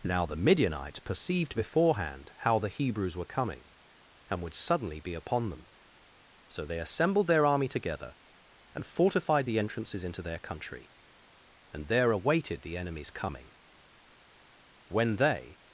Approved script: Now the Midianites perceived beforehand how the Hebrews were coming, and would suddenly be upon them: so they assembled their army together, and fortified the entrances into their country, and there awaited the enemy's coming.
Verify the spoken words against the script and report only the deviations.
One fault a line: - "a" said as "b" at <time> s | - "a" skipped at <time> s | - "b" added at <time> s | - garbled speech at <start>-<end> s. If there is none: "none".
- "When they" added at 14.9 s